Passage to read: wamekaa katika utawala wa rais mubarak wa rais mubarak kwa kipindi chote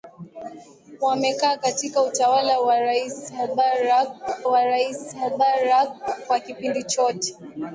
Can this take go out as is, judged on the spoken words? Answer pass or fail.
pass